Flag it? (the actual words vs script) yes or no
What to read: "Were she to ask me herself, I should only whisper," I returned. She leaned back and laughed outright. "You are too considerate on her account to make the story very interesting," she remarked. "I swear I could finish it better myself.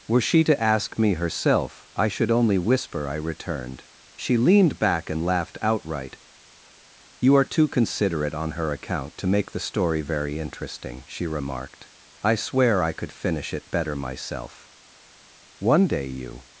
yes